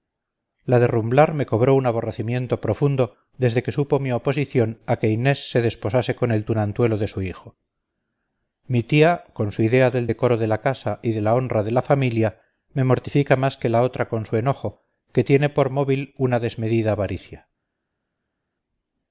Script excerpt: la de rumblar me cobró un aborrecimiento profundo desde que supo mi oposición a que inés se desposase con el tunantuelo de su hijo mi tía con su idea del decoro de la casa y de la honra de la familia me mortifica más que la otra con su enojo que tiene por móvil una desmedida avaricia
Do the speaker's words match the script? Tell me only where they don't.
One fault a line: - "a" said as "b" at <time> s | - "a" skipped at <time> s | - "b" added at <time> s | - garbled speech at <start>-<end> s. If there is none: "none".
none